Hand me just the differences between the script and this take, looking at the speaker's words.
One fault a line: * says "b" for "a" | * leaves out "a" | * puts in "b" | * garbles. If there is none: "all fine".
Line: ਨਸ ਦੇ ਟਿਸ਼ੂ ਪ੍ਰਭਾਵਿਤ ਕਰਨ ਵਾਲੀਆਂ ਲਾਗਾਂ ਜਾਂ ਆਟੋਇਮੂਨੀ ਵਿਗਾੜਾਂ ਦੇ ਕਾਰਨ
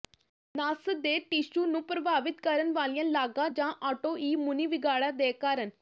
* puts in "ਨੂੰ"